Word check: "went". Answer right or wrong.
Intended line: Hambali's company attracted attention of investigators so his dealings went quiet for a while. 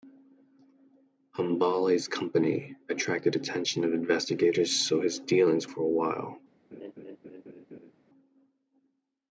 wrong